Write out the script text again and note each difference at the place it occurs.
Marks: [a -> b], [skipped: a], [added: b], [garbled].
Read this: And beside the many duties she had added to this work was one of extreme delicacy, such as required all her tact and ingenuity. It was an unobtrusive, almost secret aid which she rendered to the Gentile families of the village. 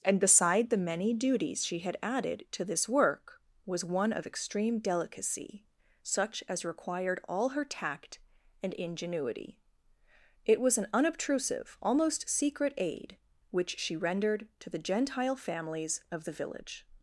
And beside the many duties she had added to this work was one of extreme delicacy, such as required all her tact and ingenuity. It was an unobtrusive, almost secret aid which she rendered to the Gentile families of the village.